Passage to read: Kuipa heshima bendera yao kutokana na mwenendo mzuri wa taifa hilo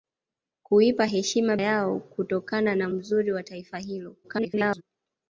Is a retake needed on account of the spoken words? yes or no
yes